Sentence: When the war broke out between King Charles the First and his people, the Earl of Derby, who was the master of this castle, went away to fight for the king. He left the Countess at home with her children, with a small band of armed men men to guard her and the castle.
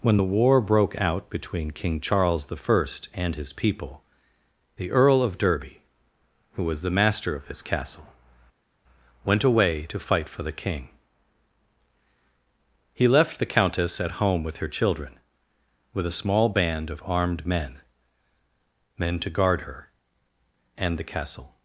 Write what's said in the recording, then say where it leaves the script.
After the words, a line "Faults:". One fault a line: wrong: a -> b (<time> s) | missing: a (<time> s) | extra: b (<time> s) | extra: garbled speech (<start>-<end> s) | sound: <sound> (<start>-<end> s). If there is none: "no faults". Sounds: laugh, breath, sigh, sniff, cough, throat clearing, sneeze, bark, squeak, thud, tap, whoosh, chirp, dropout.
When the war broke out between King Charles the First and his people, the Earl of Derby, who was the master of this castle, went away to fight for the king. He left the Countess at home with her children, with a small band of armed men men to guard her and the castle.
Faults:
no faults